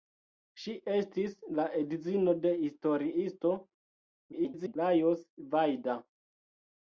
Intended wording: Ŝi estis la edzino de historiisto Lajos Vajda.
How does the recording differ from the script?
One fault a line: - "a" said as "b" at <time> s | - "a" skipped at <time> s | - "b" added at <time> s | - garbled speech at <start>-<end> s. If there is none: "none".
- garbled speech at 4.3-4.8 s